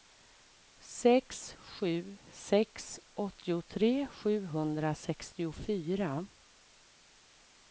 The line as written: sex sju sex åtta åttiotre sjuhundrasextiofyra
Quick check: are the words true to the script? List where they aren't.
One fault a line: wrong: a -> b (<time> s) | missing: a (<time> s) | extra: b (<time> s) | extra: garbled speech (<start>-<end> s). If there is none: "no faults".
missing: åtta (3.0 s)